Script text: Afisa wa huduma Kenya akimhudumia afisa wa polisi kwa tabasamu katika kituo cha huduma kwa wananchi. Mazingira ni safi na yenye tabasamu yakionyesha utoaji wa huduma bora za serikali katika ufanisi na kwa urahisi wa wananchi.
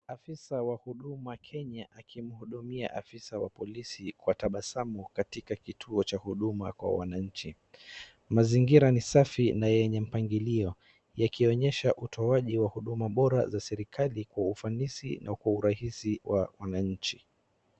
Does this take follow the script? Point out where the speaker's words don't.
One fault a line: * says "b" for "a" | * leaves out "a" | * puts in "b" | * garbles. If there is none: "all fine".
* says "mpangilio" for "tabasamu"
* says "kwa" for "katika"